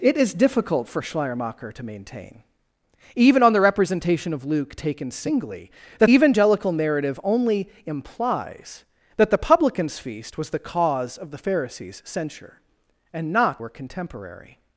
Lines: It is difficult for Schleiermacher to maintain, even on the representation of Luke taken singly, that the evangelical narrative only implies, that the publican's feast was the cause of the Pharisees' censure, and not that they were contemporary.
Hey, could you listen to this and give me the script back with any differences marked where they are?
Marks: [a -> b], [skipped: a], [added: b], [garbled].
It is difficult for Schleiermacher to maintain, even on the representation of Luke taken singly, that [skipped: the] evangelical narrative only implies, that the publican's feast was the cause of the Pharisees' censure, and not [skipped: that they] were contemporary.